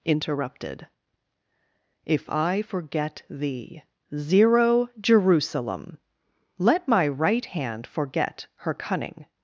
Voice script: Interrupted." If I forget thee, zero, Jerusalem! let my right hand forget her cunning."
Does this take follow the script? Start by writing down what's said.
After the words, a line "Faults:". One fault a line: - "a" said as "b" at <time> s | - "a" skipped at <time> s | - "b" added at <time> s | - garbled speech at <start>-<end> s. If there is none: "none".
Interrupted." If I forget thee, zero, Jerusalem! let my right hand forget her cunning."
Faults:
none